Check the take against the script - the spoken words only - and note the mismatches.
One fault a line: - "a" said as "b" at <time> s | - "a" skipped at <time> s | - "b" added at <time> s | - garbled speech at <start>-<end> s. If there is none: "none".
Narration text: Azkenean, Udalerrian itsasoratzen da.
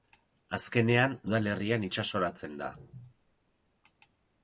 none